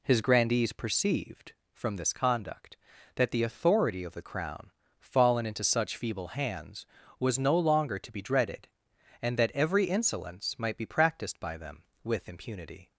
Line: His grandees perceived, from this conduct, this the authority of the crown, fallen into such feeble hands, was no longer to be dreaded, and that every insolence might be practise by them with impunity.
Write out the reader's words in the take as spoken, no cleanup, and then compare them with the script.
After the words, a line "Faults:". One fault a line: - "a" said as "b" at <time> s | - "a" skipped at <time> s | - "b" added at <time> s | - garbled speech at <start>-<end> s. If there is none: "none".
His grandees perceived, from this conduct, that the authority of the crown, fallen into such feeble hands, was no longer to be dreaded, and that every insolence might be practised by them with impunity.
Faults:
- "this" said as "that" at 3.1 s
- "practise" said as "practised" at 10.9 s